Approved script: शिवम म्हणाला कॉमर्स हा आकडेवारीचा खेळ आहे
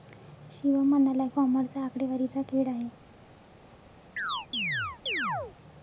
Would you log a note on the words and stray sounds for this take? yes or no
yes